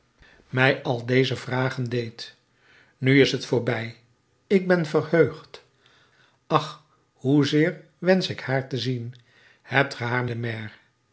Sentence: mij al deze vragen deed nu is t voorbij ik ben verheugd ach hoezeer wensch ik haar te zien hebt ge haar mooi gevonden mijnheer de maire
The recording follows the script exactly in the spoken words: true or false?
false